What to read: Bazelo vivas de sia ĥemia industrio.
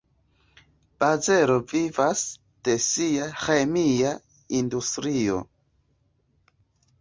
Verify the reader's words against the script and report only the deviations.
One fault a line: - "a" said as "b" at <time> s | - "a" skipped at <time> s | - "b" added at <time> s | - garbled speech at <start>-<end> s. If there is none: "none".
none